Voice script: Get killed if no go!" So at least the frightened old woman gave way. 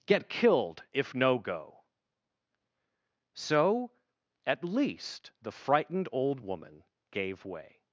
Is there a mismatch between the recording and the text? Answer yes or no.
no